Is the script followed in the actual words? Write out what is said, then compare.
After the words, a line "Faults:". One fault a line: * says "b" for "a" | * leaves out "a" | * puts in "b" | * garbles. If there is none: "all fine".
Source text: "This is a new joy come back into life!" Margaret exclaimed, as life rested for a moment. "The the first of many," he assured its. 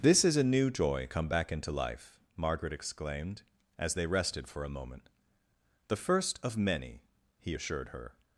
"This is a new joy come back into life!" Margaret exclaimed, as they rested for a moment. "The first of many," he assured her.
Faults:
* says "they" for "life"
* leaves out "the"
* says "her" for "its"